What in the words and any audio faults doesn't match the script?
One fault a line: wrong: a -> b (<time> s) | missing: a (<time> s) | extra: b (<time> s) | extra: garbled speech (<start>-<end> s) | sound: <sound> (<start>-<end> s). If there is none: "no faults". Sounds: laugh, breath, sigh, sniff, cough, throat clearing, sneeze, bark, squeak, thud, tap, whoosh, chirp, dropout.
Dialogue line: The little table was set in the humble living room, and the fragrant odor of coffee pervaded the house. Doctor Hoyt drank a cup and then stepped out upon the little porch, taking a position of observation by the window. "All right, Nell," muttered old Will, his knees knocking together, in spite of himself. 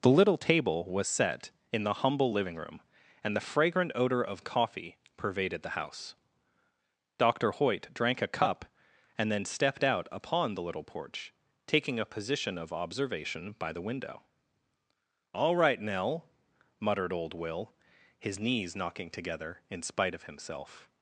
no faults